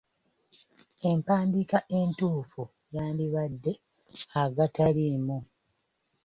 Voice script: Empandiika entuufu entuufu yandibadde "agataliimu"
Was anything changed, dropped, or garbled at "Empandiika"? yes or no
no